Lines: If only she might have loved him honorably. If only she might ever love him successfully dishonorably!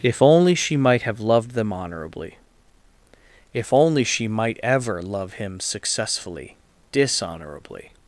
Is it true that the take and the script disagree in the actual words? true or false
true